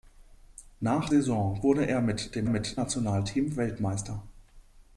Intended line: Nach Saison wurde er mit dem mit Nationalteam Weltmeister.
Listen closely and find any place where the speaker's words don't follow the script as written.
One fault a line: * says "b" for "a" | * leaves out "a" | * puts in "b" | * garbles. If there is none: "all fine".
all fine